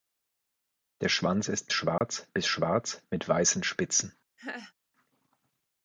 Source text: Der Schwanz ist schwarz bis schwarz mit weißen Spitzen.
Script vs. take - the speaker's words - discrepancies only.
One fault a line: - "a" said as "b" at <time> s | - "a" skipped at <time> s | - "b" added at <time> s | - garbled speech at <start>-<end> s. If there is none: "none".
none